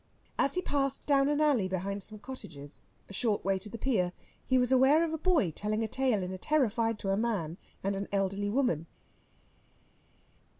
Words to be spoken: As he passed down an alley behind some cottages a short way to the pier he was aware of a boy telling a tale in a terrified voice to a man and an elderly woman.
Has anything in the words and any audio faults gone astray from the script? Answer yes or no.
yes